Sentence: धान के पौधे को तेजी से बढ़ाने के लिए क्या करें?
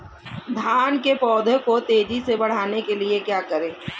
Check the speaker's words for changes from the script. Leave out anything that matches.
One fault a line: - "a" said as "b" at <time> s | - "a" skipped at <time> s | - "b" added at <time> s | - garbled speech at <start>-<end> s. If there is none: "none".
none